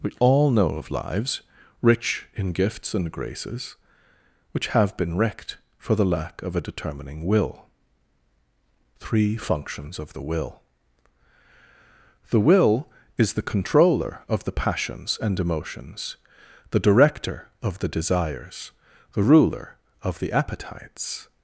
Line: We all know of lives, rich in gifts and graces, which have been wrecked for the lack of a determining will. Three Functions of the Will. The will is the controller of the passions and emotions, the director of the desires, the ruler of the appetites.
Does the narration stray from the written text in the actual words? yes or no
no